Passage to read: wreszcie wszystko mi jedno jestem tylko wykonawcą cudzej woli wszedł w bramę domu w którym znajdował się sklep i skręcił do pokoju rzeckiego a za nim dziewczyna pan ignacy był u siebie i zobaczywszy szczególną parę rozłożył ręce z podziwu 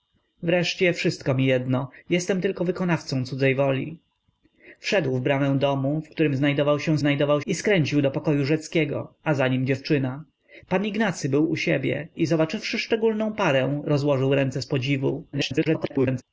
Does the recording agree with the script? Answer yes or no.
no